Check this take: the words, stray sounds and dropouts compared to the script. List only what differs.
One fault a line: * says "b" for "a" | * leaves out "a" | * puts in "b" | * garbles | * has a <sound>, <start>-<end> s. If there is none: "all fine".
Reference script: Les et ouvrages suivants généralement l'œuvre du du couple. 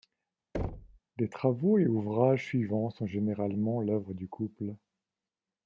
* has a thud, 0.5-1.0 s
* puts in "travaux"
* puts in "sont"
* leaves out "du"